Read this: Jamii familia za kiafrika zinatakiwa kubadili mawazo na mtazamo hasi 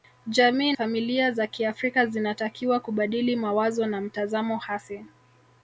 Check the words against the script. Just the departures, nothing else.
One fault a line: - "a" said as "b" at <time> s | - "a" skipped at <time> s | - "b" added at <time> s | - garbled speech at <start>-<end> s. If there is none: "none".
none